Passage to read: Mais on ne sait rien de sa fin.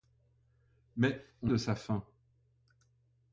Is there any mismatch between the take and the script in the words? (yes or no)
yes